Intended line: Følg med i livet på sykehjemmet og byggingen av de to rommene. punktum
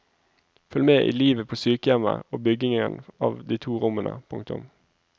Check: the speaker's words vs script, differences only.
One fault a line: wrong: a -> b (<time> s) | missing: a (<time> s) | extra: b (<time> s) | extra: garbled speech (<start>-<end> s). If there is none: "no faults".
no faults